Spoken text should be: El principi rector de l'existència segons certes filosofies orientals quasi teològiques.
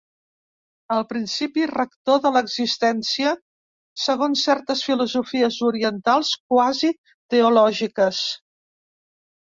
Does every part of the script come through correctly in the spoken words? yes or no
yes